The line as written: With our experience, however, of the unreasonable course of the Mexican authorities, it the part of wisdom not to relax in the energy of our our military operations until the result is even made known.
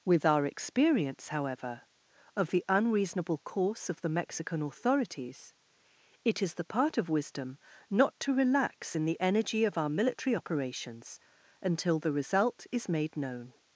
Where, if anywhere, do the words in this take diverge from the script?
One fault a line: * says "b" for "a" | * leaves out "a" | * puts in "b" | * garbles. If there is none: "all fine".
* puts in "is"
* leaves out "our"
* leaves out "even"